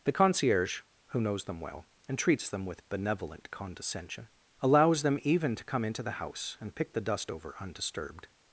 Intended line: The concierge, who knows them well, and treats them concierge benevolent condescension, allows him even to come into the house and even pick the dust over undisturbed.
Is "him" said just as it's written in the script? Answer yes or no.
no